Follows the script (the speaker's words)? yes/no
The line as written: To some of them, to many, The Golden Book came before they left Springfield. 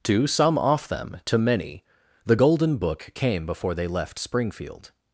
no